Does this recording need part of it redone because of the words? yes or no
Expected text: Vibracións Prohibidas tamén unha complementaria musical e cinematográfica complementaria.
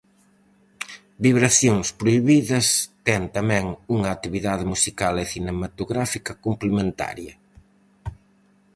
yes